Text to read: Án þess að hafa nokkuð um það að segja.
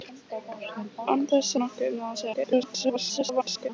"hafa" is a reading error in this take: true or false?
true